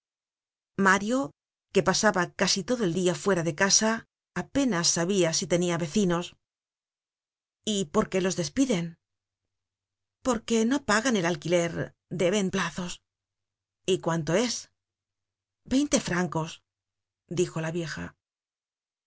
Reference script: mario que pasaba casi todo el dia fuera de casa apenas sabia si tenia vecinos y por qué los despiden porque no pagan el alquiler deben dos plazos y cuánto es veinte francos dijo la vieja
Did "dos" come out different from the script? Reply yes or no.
yes